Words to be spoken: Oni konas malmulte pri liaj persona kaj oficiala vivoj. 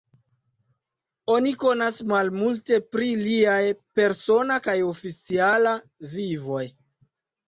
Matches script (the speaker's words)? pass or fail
pass